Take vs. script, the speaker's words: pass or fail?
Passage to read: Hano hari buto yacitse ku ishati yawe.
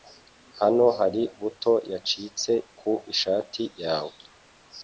pass